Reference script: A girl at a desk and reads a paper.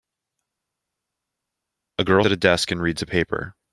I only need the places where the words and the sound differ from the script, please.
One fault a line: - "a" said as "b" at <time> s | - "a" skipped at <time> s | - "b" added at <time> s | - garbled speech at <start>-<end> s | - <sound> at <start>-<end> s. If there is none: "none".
none